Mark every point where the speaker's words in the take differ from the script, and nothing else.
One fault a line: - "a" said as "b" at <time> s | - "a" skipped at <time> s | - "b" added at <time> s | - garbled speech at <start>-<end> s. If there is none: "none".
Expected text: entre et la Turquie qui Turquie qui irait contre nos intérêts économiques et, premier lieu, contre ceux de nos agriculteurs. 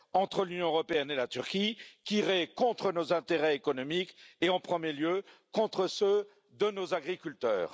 - "l'Union européenne" added at 0.5 s
- "Turquie qui" skipped at 2.2 s
- "en" added at 4.5 s